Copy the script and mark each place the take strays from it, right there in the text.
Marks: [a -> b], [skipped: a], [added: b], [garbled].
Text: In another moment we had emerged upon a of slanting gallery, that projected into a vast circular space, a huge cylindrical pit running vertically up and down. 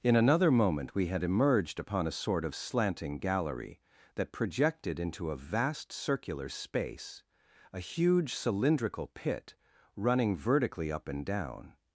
In another moment we had emerged upon a [added: sort] of slanting gallery, that projected into a vast circular space, a huge cylindrical pit running vertically up and down.